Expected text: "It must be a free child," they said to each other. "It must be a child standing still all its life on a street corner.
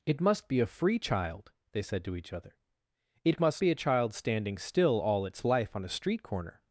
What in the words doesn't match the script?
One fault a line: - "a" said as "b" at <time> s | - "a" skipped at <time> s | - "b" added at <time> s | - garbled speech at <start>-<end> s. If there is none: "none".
none